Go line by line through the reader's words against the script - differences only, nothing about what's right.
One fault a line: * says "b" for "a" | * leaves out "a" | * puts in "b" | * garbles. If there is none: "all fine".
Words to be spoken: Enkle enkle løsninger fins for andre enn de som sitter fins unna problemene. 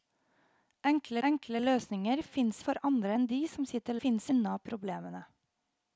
all fine